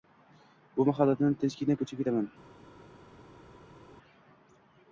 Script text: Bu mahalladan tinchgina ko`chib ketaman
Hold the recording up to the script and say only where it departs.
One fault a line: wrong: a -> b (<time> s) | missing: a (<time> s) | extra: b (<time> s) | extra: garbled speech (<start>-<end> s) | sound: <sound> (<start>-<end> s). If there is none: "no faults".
no faults